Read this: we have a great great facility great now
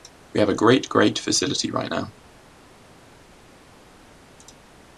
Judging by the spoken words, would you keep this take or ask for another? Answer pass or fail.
fail